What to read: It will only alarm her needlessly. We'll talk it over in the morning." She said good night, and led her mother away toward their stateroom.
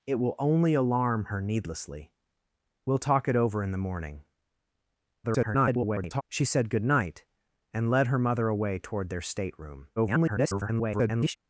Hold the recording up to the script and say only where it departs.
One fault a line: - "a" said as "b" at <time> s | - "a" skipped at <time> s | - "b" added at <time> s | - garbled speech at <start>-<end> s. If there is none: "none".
- garbled speech at 5.2-6.2 s
- garbled speech at 10.0-11.4 s